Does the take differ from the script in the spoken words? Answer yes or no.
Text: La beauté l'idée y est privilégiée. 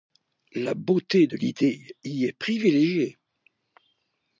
yes